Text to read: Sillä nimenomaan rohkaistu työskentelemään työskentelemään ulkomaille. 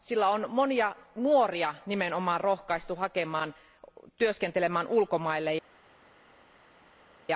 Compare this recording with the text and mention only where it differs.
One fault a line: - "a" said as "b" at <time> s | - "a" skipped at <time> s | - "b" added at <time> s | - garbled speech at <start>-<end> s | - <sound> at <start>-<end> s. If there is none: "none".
- "on monia nuoria" added at 0.3 s
- "työskentelemään" skipped at 4.9 s